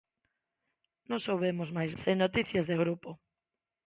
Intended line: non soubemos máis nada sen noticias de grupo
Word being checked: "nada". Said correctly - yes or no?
no